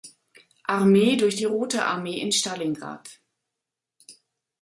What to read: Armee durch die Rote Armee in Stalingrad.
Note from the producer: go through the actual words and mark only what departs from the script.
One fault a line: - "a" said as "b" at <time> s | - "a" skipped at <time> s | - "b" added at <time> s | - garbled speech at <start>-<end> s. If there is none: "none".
none